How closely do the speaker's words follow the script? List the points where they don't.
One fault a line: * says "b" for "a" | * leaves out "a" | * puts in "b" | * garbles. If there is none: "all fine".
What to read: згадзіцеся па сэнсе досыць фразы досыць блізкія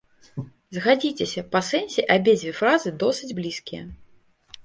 * says "абедзве" for "досыць"